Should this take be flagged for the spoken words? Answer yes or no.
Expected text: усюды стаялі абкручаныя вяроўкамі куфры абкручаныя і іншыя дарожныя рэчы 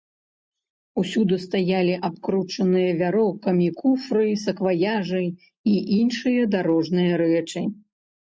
yes